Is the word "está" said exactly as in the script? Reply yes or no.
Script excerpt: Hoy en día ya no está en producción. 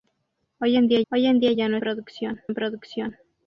no